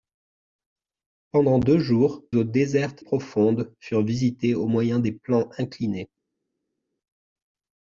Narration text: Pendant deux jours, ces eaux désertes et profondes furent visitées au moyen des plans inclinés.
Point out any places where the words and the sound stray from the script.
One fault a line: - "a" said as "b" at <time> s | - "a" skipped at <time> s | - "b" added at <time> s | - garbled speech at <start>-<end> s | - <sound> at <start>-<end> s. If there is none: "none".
- "ces" skipped at 2.2 s
- "et" skipped at 3.0 s